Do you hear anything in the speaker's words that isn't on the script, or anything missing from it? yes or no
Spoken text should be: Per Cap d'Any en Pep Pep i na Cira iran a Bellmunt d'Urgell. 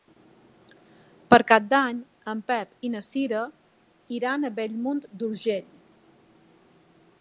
yes